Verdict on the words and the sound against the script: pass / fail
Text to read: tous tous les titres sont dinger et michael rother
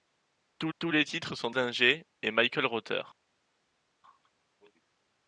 pass